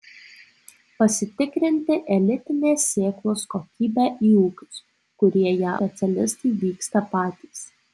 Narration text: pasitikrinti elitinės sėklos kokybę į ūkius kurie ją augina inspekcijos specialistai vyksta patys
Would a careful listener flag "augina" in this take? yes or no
yes